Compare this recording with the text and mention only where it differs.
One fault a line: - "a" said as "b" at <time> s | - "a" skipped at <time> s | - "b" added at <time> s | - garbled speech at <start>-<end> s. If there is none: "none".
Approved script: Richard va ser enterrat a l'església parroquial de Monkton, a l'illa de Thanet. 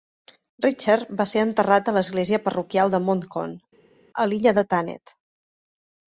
none